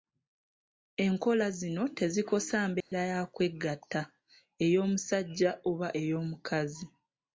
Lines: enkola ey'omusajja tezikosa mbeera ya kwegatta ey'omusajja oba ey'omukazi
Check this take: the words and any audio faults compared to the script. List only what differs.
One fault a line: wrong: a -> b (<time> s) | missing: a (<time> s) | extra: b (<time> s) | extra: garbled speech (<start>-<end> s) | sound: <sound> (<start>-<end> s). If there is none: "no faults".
wrong: ey'omusajja -> zino (1.6 s)
sound: dropout (2.8-2.9 s)